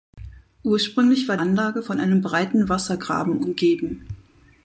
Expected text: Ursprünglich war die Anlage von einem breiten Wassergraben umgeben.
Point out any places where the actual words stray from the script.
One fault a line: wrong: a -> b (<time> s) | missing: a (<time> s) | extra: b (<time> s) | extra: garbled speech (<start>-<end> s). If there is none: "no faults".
missing: die (1.4 s)